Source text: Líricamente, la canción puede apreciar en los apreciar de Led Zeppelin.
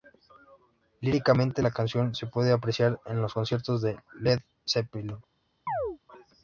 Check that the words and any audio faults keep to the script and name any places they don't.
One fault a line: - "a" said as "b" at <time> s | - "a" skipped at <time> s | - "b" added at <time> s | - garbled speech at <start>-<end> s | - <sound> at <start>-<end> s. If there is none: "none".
- "se" added at 2.1 s
- "apreciar" said as "conciertos" at 3.3 s
- chirp at 5.7-6.0 s